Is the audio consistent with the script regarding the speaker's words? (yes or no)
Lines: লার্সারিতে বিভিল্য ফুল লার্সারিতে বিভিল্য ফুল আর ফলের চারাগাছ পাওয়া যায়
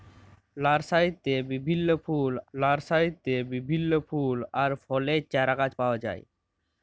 yes